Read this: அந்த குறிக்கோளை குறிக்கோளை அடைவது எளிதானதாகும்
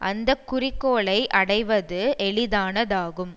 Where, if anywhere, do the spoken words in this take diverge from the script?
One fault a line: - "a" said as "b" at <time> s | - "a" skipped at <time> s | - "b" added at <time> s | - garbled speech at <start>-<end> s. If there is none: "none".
- "குறிக்கோளை" skipped at 1.3 s